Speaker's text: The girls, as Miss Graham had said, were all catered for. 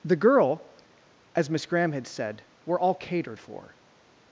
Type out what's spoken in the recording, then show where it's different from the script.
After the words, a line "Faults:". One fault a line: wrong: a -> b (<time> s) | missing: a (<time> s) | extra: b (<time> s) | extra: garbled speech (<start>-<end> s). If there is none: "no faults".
The girl, as Miss Graham had said, were all catered for.
Faults:
wrong: girls -> girl (0.1 s)